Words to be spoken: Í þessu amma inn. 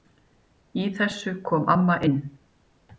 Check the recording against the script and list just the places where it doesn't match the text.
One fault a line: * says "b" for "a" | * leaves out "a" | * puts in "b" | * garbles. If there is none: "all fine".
* puts in "kom"